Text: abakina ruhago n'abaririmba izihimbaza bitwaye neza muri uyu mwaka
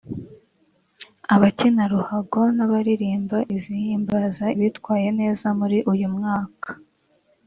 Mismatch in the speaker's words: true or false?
false